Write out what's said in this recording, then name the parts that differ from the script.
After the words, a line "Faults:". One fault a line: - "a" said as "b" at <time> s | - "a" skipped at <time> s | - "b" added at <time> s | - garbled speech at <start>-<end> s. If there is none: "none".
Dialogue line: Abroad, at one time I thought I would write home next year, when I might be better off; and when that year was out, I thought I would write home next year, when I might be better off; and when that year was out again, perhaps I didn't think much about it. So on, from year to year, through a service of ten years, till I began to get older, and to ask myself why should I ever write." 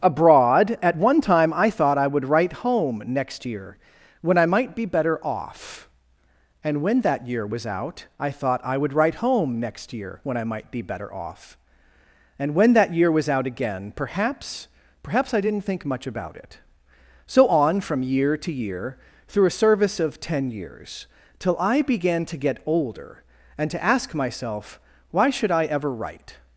Abroad, at one time I thought I would write home next year, when I might be better off; and when that year was out, I thought I would write home next year, when I might be better off; and when that year was out again, perhaps perhaps I didn't think much about it. So on, from year to year, through a service of ten years, till I began to get older, and to ask myself why should I ever write."
Faults:
- "perhaps" added at 15.0 s